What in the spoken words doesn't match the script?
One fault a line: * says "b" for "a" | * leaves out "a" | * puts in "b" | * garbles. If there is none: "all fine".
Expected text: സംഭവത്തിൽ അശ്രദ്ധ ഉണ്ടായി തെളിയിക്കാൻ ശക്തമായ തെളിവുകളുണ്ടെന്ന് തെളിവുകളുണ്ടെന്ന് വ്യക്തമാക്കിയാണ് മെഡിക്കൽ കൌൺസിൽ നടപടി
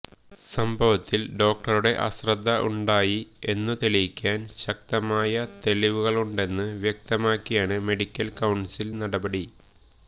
* puts in "ഡോക്ടറുടെ"
* puts in "എന്നു"
* leaves out "തെളിവുകളുണ്ടെന്ന്"